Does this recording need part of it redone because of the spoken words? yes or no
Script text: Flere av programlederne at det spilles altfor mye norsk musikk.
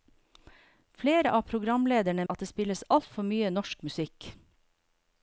no